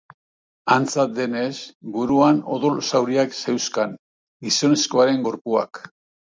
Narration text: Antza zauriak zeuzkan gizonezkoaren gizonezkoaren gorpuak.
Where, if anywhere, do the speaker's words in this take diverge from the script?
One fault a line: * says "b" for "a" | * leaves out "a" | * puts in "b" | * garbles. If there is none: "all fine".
* puts in "denez buruan odol"
* leaves out "gizonezkoaren"